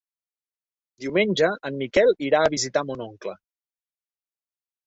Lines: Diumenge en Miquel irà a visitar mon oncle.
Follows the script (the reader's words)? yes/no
yes